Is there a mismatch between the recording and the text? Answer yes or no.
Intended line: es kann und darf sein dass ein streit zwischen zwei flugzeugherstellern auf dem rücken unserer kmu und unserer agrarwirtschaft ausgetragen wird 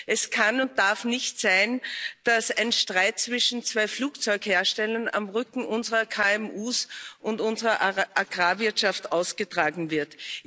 yes